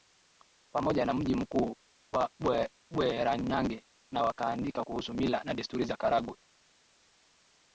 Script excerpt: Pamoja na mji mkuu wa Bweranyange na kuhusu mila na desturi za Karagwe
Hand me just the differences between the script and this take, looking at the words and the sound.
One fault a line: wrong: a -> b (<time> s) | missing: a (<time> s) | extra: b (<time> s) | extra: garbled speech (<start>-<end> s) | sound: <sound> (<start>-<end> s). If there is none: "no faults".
extra: wakaandika (4.2 s)